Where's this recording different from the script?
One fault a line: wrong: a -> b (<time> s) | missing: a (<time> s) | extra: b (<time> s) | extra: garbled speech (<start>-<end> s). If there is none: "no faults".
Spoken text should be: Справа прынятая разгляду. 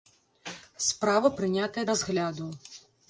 no faults